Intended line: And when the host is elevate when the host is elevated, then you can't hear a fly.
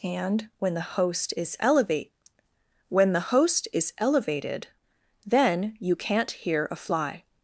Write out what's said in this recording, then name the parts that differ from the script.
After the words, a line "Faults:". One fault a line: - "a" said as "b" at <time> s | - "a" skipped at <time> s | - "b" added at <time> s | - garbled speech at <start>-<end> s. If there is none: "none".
And when the host is elevate when the host is elevated, then you can't hear a fly.
Faults:
none